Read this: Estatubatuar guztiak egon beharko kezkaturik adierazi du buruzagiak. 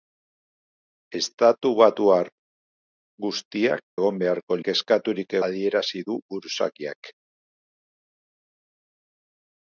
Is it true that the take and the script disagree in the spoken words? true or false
false